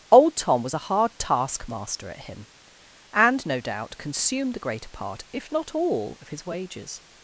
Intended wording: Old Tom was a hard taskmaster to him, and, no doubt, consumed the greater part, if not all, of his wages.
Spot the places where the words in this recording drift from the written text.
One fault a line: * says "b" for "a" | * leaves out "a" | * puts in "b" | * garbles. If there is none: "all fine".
* says "at" for "to"